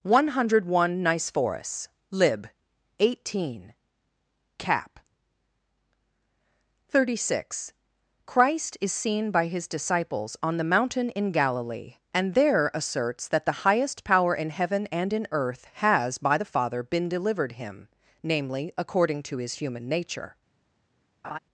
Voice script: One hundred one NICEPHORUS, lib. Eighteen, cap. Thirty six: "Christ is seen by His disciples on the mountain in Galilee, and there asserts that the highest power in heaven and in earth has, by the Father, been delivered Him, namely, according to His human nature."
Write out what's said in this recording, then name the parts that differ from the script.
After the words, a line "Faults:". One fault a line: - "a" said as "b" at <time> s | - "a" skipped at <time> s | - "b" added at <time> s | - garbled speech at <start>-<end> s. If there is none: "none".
One hundred one NICEPHORUS, lib. Eighteen, cap. Thirty six: "Christ is seen by His disciples on the mountain in Galilee, and there asserts that the highest power in heaven and in earth has, by the Father, been delivered Him, namely, according to His human nature."
Faults:
none